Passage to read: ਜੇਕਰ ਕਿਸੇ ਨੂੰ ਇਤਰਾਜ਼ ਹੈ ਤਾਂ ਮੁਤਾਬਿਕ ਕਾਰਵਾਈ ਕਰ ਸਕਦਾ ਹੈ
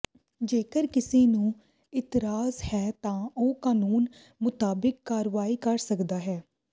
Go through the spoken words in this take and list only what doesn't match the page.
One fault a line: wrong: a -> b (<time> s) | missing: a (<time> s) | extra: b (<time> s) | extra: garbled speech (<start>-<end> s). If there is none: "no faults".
extra: ਉਹ ਕਾਨੂੰਨ (3.4 s)